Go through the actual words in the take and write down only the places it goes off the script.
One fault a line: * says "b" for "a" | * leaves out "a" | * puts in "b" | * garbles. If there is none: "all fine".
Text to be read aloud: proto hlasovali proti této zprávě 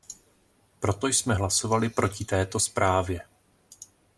* puts in "jsme"